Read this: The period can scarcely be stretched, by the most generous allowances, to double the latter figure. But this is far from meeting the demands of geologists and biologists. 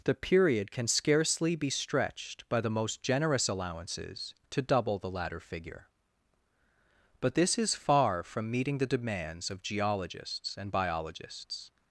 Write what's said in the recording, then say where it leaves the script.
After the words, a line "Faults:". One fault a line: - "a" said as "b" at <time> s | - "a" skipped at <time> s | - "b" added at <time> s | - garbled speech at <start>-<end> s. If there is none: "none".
The period can scarcely be stretched, by the most generous allowances, to double the latter figure. But this is far from meeting the demands of geologists and biologists.
Faults:
none